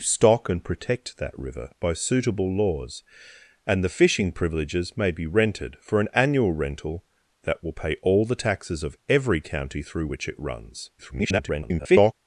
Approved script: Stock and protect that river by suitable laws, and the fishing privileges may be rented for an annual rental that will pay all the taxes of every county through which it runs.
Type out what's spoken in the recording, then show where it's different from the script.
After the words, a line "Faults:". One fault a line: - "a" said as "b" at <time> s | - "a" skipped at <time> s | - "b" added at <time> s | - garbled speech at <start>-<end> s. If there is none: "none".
Stock and protect that river by suitable laws, and the fishing privileges may be rented for an annual rental that will pay all the taxes of every county through which it runs. [garbled]
Faults:
- garbled speech at 11.0-12.1 s